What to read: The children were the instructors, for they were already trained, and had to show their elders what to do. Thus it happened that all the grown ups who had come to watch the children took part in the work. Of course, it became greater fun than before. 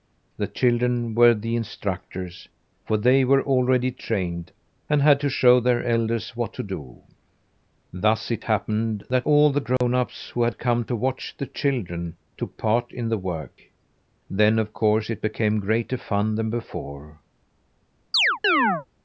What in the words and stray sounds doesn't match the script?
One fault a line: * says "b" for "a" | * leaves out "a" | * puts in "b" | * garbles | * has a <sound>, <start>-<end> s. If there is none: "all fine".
* has a dropout, 9.8-9.8 s
* puts in "Then"
* has a chirp, 18.1-18.9 s